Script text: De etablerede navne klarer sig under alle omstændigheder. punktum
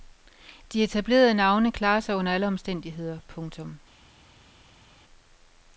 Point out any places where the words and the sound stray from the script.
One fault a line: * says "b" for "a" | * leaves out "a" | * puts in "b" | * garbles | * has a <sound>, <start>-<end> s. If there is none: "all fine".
all fine